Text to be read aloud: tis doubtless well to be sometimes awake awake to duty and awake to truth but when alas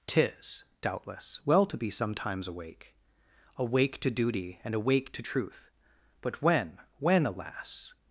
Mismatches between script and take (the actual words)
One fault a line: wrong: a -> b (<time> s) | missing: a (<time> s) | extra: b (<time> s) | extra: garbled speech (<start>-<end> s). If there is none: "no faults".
extra: when (7.0 s)